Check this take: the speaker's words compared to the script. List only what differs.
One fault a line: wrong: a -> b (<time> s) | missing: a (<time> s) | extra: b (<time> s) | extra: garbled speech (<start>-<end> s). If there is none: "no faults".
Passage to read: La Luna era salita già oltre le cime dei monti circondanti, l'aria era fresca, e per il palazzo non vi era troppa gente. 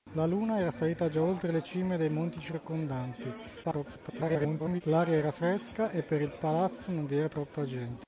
extra: garbled speech (3.6-4.8 s)